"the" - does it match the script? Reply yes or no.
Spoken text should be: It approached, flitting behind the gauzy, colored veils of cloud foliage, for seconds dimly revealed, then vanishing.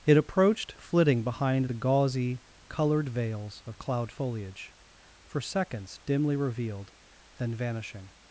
yes